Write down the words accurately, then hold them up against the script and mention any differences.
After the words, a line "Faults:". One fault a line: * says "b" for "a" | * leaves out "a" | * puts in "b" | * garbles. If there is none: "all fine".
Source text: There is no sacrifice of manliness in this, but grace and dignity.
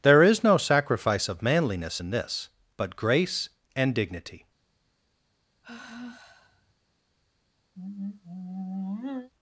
There is no sacrifice of manliness in this, but grace and dignity.
Faults:
all fine